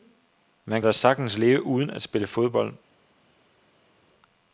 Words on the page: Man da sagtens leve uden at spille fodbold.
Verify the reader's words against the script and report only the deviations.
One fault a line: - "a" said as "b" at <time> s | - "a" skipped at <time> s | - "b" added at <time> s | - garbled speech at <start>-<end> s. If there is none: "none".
none